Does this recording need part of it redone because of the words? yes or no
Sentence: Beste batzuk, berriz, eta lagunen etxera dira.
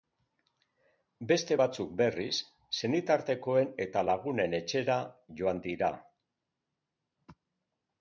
yes